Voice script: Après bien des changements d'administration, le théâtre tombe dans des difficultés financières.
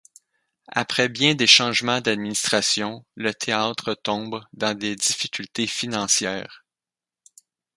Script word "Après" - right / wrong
right